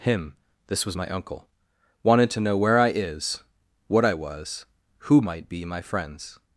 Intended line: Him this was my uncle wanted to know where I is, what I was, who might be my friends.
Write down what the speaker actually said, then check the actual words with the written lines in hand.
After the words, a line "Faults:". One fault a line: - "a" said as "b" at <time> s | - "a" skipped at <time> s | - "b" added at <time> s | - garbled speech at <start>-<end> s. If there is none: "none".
Him this was my uncle wanted to know where I is, what I was, who might be my friends.
Faults:
none